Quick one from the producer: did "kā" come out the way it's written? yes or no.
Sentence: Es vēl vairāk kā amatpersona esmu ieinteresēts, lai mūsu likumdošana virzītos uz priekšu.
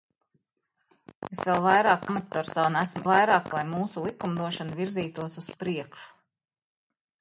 no